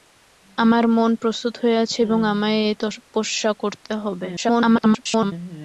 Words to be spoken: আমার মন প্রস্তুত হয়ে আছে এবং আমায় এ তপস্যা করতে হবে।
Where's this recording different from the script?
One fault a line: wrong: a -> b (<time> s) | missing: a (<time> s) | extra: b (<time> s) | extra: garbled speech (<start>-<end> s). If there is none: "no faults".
extra: garbled speech (4.4-5.3 s)